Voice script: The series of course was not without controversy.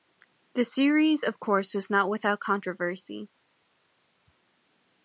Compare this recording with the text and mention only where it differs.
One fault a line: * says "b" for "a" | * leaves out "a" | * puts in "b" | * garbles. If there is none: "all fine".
all fine